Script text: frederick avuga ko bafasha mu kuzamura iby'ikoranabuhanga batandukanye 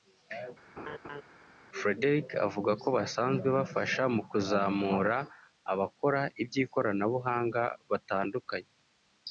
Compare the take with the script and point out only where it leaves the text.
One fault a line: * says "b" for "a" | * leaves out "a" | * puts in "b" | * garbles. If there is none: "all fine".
* puts in "basanzwe"
* puts in "abakora"